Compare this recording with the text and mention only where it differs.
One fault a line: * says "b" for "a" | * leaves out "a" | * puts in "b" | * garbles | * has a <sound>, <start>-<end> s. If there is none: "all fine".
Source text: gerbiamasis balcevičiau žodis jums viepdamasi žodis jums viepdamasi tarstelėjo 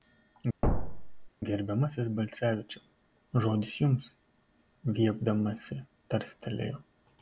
* has a thud, 0.6-1.3 s
* leaves out "žodis jums viepdamasi"